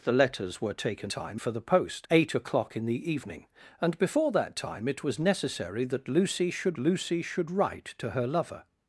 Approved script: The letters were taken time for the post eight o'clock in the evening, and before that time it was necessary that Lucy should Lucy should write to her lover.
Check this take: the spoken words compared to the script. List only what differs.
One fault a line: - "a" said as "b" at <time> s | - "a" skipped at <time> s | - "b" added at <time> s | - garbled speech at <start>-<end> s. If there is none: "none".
none